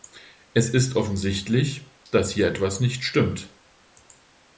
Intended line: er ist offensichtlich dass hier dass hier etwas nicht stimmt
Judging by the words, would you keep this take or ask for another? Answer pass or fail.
fail